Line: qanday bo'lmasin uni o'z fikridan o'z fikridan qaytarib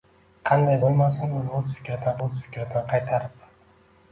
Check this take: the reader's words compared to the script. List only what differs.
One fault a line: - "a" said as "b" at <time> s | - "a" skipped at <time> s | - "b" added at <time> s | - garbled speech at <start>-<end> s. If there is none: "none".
none